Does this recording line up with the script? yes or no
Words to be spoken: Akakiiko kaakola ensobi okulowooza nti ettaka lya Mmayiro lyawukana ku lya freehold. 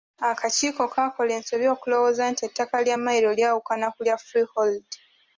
yes